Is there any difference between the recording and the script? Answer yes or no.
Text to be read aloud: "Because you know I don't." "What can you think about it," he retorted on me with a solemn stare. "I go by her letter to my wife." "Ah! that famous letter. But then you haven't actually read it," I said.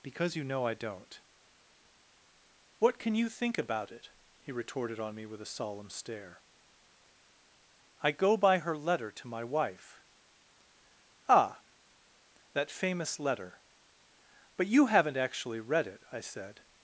yes